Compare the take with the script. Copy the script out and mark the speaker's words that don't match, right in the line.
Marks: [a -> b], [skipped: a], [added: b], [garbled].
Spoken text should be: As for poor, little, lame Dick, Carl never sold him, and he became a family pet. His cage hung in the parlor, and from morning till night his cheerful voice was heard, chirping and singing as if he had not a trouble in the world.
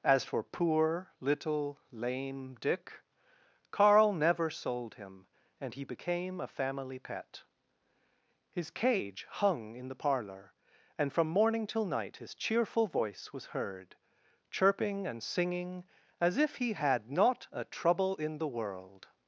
As for poor, little, lame Dick, Carl never sold him, and he became a family pet. His cage hung in the parlor, and from morning till night his cheerful voice was heard, chirping and singing as if he had not a trouble in the world.